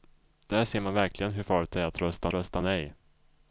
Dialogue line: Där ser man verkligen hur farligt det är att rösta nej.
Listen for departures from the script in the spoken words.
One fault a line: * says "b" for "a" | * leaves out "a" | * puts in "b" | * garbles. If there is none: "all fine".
* puts in "rösta"